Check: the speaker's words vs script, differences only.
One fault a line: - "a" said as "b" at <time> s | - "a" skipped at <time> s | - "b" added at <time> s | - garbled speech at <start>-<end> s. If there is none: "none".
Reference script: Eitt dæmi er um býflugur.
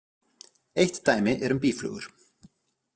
none